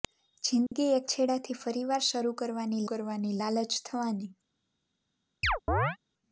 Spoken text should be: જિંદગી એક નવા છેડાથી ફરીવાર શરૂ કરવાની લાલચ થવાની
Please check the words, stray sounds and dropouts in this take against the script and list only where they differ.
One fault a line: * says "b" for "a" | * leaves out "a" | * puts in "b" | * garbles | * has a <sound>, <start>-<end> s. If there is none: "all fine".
* has a dropout, 0.7-0.7 s
* leaves out "નવા"
* puts in "કરવાની"
* has a chirp, 5.4-6.0 s